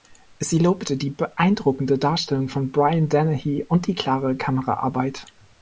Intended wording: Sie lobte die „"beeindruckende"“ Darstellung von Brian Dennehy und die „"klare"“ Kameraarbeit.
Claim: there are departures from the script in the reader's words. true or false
false